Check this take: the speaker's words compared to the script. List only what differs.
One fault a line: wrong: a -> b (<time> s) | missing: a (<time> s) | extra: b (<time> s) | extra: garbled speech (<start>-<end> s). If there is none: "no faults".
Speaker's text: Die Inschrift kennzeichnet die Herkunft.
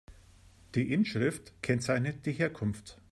no faults